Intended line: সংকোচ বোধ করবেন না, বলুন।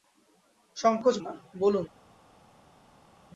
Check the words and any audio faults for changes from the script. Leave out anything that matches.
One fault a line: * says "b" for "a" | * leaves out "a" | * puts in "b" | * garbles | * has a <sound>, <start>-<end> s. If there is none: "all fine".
* leaves out "বোধ করবেন"